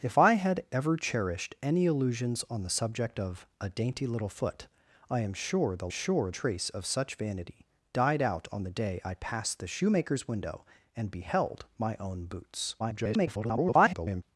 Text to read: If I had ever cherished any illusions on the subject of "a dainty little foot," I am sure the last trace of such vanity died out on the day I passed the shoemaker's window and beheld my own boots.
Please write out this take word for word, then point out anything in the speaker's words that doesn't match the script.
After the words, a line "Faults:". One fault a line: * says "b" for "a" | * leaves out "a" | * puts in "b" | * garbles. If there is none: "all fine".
If I had ever cherished any illusions on the subject of "a dainty little foot," I am sure the sure trace of such vanity died out on the day I passed the shoemaker's window and beheld my own boots. [garbled]
Faults:
* says "sure" for "last"
* garbles